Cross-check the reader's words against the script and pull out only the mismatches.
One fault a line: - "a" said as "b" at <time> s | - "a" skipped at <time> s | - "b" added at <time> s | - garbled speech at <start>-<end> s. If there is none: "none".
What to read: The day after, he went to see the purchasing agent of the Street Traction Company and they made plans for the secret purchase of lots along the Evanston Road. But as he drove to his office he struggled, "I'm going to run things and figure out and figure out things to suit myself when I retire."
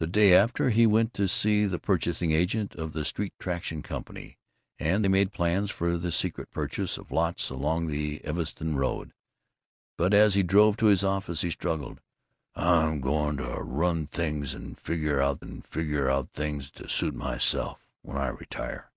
none